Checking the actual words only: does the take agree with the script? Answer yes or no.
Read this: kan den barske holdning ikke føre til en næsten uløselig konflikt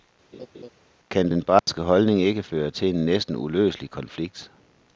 yes